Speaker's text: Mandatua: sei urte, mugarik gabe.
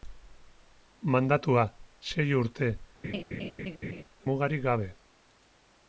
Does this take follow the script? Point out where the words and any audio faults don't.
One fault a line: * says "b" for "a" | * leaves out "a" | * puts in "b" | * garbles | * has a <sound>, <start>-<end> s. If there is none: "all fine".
* has a laugh, 3.0-4.0 s